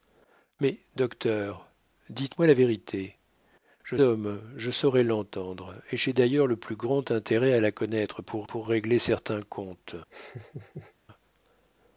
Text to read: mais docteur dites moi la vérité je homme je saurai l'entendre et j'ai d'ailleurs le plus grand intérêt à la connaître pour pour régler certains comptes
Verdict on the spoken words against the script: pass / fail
pass